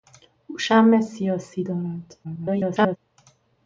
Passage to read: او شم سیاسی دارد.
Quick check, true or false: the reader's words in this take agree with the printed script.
false